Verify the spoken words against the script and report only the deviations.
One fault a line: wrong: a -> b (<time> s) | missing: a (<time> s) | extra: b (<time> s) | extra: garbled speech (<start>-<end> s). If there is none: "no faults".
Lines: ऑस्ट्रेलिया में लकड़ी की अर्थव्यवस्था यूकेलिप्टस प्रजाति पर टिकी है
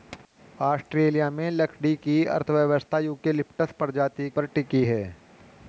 no faults